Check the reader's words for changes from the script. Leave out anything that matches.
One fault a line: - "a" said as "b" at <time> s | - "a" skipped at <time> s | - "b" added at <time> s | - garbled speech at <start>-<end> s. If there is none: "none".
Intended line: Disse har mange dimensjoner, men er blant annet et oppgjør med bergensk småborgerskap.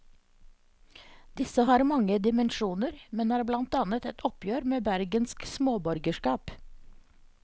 none